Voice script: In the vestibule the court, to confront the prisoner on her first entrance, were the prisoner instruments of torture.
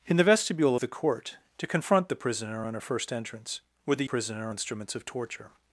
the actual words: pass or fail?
pass